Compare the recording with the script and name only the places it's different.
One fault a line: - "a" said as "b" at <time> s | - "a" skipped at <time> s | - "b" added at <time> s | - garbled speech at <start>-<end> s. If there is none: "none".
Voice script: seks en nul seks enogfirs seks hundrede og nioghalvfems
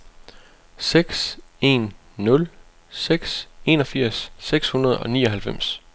none